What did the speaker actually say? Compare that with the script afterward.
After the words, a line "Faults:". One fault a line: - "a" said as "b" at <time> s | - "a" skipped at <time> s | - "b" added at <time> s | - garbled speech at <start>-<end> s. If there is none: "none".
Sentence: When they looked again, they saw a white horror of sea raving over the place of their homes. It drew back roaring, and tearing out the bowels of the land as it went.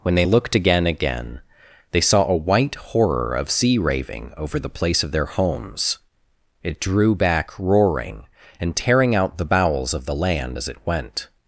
When they looked again again, they saw a white horror of sea raving over the place of their homes. It drew back roaring, and tearing out the bowels of the land as it went.
Faults:
- "again" added at 0.9 s